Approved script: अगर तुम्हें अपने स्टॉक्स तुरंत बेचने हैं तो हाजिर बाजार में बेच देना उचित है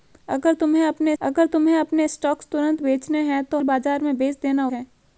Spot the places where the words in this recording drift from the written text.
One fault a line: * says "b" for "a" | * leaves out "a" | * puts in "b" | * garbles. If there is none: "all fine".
* puts in "अगर तुम्हें अपने"
* leaves out "हाजिर"
* leaves out "उचित"